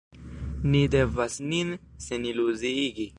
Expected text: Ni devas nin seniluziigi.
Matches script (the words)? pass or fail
pass